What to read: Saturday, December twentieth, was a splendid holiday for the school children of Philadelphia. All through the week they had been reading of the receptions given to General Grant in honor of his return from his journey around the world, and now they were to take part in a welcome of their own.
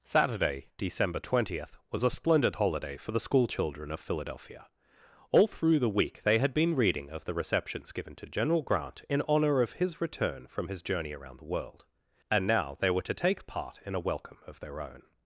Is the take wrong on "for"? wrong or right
right